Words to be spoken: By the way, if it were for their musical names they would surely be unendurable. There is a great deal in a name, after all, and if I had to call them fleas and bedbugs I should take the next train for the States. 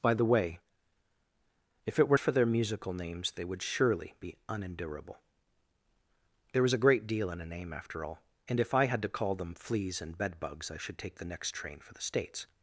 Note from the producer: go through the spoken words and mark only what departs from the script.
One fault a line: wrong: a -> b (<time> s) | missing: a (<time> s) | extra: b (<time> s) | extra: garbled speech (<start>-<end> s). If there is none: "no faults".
no faults